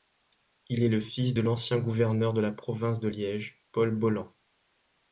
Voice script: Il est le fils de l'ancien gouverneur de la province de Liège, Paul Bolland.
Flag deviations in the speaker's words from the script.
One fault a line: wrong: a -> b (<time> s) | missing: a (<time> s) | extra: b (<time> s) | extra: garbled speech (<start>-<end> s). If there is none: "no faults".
no faults